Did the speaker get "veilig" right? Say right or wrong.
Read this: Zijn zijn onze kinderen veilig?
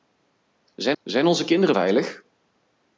right